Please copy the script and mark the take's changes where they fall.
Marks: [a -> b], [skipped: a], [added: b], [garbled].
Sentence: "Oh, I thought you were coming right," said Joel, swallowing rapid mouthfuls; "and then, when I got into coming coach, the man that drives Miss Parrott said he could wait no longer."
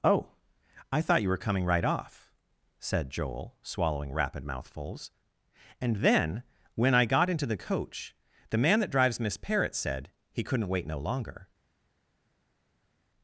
"Oh, I thought you were coming right," [added: off] said Joel, swallowing rapid mouthfuls; "and then, when I got into [coming -> the] coach, the man that drives Miss Parrott said he [could -> couldn't] wait no longer."